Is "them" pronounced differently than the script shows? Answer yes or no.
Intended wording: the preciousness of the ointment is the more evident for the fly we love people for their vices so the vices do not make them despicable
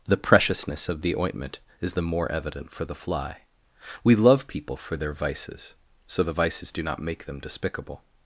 no